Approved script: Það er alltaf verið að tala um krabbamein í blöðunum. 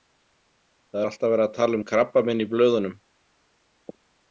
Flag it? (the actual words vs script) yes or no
no